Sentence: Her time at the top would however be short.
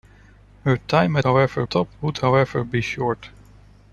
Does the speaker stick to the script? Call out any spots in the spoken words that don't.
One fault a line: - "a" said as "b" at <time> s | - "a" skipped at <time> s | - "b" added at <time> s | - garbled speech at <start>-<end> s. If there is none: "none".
- "the" said as "however" at 1.2 s